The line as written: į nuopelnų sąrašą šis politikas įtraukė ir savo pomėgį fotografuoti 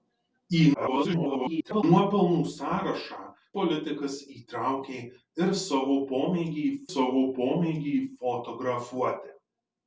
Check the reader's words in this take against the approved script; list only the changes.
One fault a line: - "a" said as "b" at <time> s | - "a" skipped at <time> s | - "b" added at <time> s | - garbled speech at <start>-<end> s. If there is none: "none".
- garbled speech at 0.7-1.8 s
- "šis" skipped at 3.2 s
- "savo pomėgį" added at 6.9 s